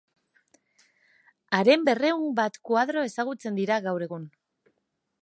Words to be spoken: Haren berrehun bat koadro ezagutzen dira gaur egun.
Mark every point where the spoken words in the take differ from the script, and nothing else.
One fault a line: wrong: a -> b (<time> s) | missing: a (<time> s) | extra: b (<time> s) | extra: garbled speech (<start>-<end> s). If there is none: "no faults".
no faults